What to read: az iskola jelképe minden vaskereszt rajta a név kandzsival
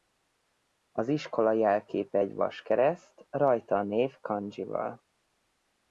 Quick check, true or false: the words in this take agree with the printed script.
false